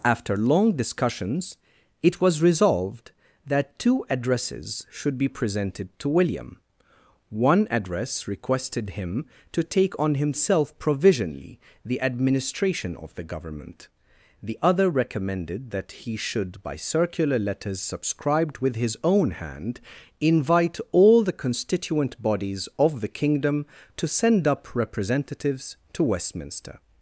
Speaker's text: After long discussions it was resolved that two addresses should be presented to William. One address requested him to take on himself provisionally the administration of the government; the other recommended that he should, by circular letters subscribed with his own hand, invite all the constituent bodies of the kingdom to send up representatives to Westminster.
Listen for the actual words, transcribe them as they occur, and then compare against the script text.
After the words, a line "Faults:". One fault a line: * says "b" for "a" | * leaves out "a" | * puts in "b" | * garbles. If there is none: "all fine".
After long discussions it was resolved that two addresses should be presented to William. One address requested him to take on himself provisionally the administration of the government; the other recommended that he should, by circular letters subscribed with his own hand, invite all the constituent bodies of the kingdom to send up representatives to Westminster.
Faults:
all fine